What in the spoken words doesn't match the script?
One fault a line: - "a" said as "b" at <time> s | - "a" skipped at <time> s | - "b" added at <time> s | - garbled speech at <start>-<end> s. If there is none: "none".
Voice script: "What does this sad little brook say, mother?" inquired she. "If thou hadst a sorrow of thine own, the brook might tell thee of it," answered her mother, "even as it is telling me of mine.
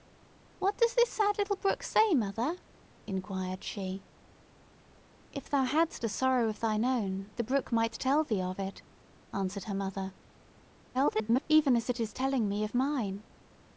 - garbled speech at 10.9-11.4 s